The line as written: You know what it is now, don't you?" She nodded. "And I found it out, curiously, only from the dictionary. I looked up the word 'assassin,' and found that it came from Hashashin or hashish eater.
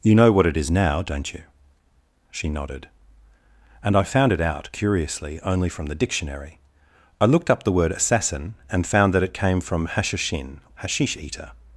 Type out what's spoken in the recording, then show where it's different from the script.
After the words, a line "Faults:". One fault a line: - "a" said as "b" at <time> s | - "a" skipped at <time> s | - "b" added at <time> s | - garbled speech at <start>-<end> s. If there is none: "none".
You know what it is now, don't you?" She nodded. "And I found it out, curiously, only from the dictionary. I looked up the word 'assassin,' and found that it came from Hashashin hashish eater.
Faults:
- "or" skipped at 10.6 s